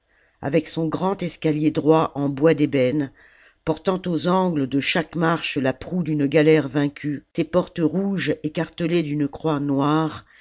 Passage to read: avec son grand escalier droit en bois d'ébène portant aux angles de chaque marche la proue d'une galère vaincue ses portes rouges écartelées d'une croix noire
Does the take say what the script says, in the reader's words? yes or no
yes